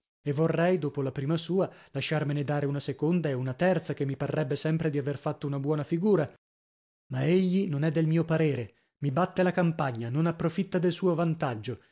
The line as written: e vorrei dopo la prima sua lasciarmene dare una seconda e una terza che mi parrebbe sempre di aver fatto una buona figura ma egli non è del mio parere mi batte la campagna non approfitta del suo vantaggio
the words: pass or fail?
pass